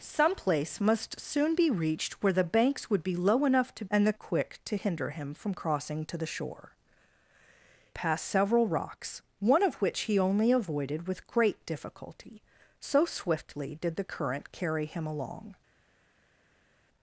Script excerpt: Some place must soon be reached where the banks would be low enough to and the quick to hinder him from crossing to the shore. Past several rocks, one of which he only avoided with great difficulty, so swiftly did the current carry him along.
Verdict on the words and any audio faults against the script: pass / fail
pass